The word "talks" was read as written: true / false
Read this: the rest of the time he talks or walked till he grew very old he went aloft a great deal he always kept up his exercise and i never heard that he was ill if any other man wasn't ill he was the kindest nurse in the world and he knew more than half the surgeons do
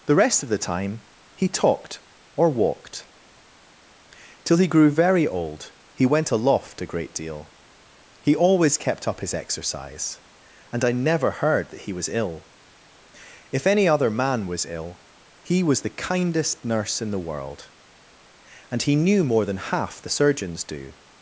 false